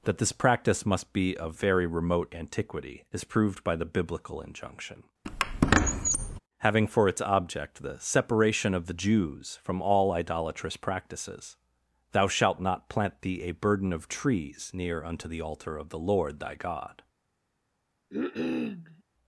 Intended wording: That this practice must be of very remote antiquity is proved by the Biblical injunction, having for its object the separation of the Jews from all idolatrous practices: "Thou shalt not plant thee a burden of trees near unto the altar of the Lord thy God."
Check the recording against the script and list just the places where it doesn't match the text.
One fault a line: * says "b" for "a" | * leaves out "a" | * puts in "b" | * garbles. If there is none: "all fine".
all fine